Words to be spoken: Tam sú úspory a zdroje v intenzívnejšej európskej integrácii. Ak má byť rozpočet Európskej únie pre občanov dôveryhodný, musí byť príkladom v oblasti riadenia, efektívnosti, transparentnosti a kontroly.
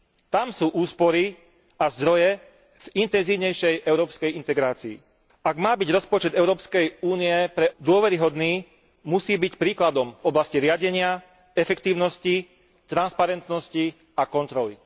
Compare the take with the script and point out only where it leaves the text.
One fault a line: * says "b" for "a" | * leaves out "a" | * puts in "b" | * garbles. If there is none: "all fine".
* leaves out "občanov"